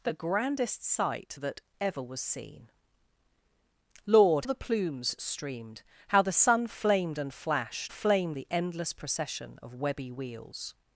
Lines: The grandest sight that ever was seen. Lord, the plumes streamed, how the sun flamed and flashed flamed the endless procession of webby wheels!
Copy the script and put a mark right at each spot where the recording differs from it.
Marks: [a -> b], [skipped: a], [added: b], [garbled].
The grandest sight that ever was seen. Lord, the plumes streamed, how the sun flamed and flashed flamed the endless procession of webby wheels!